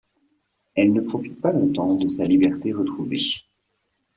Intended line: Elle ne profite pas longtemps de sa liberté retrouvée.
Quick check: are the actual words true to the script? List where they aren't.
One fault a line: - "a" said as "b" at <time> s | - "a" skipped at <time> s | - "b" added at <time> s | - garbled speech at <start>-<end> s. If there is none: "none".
none